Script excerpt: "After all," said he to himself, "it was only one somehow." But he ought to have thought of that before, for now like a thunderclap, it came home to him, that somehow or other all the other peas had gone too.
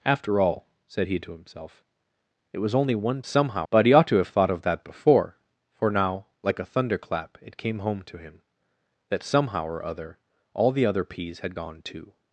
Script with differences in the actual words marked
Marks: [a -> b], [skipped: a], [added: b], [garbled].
"After all," said he to himself, "it was only one somehow." But he ought to have thought of that before, for now like a thunderclap, it came home to him, that somehow or other all the other peas had gone too.